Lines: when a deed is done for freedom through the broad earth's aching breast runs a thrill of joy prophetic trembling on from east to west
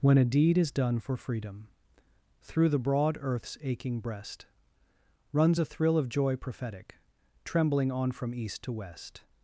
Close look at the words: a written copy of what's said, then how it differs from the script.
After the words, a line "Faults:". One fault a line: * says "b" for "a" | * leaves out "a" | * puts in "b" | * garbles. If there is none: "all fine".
when a deed is done for freedom through the broad earth's aching breast runs a thrill of joy prophetic trembling on from east to west
Faults:
all fine